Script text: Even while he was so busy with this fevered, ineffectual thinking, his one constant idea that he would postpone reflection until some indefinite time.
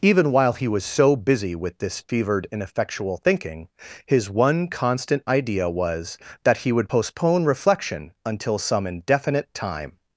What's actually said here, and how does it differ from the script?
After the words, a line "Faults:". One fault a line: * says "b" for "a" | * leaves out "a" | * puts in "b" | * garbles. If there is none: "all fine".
Even while he was so busy with this fevered, ineffectual thinking, his one constant idea was, that he would postpone reflection until some indefinite time.
Faults:
* puts in "was"